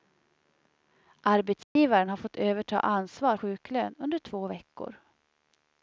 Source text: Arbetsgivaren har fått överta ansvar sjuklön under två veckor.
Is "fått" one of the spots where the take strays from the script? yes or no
no